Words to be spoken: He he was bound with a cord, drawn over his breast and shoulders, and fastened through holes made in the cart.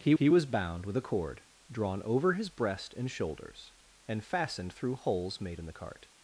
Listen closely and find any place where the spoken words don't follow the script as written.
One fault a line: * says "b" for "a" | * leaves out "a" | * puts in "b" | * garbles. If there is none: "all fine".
all fine